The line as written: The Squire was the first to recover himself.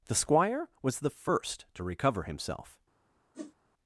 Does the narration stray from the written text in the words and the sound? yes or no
yes